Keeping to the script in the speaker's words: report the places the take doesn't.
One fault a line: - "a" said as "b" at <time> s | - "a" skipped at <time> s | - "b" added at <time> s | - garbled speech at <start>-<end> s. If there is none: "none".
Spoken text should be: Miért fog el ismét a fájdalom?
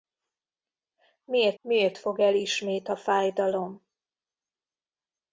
- "miért" added at 1.6 s